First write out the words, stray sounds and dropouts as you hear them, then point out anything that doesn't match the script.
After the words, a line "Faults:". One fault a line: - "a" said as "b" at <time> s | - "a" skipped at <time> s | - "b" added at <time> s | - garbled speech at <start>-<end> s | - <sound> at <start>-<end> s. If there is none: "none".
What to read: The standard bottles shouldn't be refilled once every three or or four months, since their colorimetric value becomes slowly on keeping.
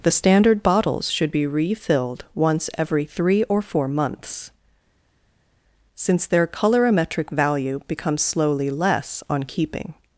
The standard bottles should be refilled once every three or four months, since their colorimetric value becomes slowly less on keeping.
Faults:
- "shouldn't" said as "should" at 1.1 s
- "or" skipped at 3.6 s
- "less" added at 8.7 s